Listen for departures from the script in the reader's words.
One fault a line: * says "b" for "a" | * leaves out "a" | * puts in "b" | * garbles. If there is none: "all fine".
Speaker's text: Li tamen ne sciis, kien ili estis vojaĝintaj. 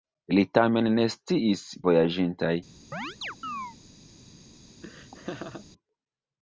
* leaves out "kien ili estis"